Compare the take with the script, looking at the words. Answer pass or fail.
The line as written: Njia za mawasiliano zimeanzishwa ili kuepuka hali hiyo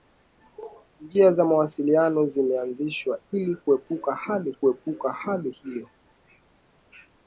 fail